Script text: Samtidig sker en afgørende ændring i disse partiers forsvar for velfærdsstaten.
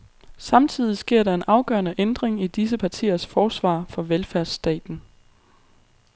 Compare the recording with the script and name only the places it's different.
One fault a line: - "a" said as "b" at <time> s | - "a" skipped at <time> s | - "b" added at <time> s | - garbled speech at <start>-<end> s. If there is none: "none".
- "der" added at 1.2 s